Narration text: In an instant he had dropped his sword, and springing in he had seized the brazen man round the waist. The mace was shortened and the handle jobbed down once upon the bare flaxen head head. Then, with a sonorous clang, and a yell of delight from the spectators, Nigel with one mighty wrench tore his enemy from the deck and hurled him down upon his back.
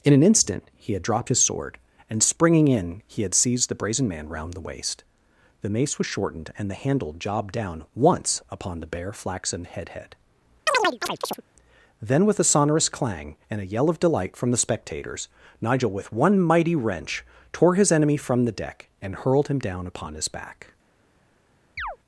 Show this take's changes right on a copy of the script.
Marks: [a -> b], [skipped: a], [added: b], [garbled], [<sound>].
In an instant he had dropped his sword, and springing in he had seized the brazen man round the waist. The mace was shortened and the handle jobbed down once upon the bare flaxen head head. [chirp] Then, with a sonorous clang, and a yell of delight from the spectators, Nigel with one mighty wrench tore his enemy from the deck and hurled him down upon his back. [chirp]